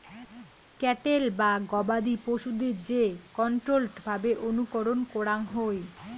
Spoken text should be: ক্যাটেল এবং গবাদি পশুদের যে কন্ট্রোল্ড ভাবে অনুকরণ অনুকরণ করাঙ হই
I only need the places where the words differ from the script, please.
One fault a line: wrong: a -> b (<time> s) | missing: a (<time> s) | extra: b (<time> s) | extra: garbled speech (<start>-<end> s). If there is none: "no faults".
wrong: এবং -> বা (1.4 s)
missing: অনুকরণ (5.0 s)